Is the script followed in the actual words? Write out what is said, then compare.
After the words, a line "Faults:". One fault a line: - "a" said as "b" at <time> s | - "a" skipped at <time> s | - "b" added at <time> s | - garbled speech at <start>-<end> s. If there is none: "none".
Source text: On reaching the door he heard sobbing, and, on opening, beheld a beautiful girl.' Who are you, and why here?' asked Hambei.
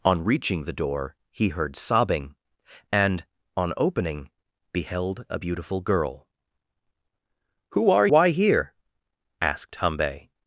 On reaching the door he heard sobbing, and, on opening, beheld a beautiful girl.' Who are why here?' asked Hambei.
Faults:
- "you and" skipped at 8.1 s